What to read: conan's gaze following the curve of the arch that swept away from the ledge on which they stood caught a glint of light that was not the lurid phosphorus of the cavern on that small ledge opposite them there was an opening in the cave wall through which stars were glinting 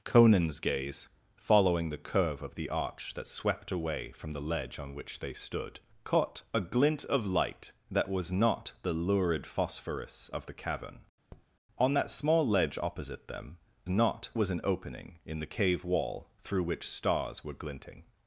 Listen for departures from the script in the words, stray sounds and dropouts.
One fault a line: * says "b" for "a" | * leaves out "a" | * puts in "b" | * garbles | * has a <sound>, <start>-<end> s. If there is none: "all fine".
* has a tap, 11.3-11.5 s
* says "not" for "there"